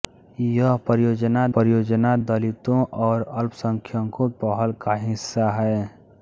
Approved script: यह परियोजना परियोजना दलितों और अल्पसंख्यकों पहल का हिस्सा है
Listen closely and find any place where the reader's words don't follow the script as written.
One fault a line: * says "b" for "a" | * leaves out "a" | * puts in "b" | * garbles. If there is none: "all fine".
all fine